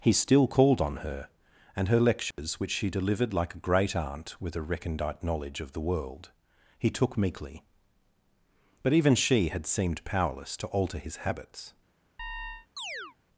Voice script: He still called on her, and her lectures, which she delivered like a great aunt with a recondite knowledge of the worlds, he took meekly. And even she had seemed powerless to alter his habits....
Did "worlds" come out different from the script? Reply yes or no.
yes